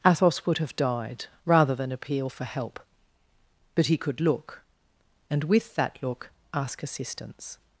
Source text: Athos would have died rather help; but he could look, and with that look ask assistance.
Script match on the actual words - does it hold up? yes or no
no